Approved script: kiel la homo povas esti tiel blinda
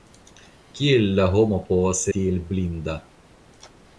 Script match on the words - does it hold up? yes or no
no